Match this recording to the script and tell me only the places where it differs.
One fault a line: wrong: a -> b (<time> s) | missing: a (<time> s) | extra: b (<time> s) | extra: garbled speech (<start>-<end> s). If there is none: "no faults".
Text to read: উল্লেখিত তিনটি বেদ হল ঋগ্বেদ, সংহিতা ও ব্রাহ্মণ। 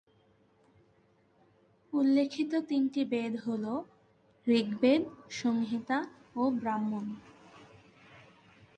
no faults